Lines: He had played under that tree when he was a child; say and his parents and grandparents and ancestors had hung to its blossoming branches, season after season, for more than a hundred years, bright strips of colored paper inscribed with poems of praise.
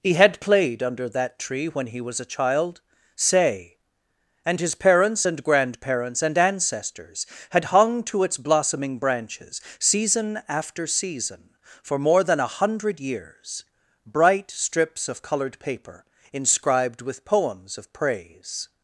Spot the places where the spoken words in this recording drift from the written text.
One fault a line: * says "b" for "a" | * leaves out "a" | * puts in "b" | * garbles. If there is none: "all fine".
all fine